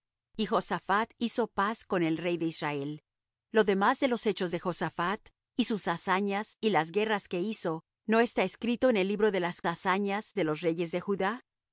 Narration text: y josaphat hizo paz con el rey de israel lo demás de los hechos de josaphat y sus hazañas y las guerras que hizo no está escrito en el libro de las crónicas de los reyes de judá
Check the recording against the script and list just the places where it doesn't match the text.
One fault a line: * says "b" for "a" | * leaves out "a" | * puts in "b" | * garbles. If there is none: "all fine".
* says "hazañas" for "crónicas"